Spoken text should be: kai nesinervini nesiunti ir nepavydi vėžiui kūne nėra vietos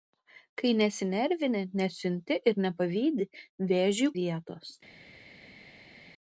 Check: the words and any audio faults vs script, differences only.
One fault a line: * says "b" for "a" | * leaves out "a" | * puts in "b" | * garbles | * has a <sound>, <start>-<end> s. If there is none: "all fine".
* leaves out "kūne nėra"